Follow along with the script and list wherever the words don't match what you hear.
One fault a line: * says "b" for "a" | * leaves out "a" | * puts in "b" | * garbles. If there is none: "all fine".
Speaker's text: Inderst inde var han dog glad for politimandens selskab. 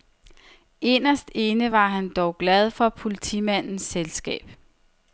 all fine